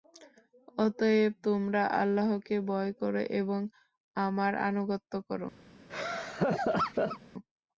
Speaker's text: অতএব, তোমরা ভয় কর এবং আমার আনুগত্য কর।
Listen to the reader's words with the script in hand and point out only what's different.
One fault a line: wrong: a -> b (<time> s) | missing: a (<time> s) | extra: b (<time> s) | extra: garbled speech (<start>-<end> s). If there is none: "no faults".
extra: আল্লাহকে (2.0 s)